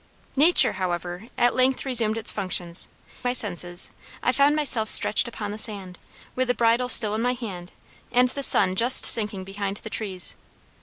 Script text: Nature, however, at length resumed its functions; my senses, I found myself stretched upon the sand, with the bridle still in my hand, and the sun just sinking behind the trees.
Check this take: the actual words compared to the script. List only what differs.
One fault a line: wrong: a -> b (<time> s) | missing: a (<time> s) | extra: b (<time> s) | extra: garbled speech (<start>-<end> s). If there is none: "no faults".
no faults